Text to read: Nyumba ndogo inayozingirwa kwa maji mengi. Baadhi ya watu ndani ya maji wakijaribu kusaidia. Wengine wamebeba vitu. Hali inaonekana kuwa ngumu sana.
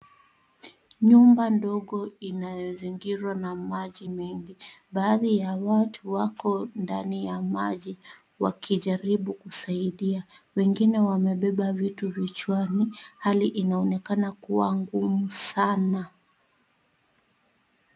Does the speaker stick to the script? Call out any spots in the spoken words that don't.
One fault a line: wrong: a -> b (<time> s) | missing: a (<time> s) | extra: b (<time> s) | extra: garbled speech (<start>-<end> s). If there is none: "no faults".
wrong: kwa -> na (3.4 s)
extra: wako (6.1 s)
extra: vichwani (12.1 s)